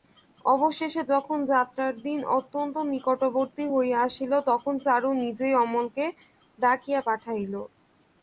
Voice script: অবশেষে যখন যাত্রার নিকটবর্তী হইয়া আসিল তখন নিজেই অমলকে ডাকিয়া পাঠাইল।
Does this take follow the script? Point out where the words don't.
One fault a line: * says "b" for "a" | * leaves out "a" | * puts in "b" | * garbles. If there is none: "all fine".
* puts in "দিন অত্যন্ত"
* puts in "চারু"